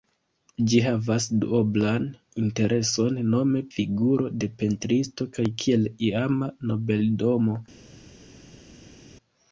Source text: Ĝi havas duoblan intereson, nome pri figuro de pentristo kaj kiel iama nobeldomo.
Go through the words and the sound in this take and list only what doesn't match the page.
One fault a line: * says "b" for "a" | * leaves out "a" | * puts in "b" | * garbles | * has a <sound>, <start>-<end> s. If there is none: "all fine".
* leaves out "pri"